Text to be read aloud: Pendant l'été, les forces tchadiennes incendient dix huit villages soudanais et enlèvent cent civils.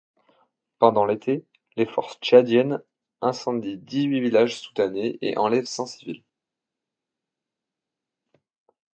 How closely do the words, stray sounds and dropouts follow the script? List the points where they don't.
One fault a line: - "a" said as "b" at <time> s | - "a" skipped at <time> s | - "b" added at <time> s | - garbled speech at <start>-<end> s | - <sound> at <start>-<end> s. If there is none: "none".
none